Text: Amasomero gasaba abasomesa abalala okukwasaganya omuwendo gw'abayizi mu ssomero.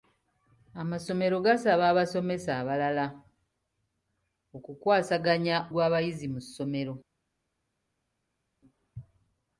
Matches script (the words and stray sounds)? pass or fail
fail